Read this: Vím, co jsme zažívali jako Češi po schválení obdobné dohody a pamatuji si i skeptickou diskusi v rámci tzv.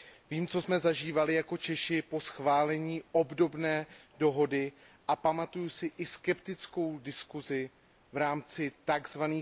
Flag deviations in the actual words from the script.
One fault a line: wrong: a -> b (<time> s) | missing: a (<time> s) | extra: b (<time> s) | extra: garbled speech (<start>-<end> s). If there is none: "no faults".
no faults